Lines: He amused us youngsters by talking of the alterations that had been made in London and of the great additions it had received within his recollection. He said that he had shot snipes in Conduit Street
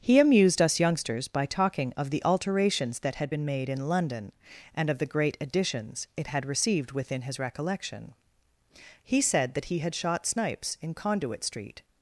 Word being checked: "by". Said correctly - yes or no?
yes